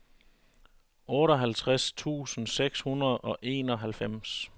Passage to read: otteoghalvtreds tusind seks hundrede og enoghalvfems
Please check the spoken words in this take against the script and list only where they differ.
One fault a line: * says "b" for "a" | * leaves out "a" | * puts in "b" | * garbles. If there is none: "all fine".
all fine